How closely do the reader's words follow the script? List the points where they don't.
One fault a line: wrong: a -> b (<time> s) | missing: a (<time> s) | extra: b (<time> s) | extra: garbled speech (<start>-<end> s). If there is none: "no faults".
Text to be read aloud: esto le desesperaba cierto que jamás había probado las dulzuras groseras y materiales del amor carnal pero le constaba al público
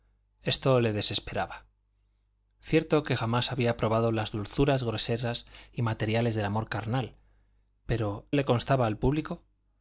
no faults